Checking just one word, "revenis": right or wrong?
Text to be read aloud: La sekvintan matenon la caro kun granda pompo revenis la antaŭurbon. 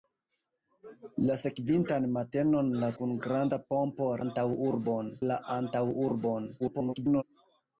wrong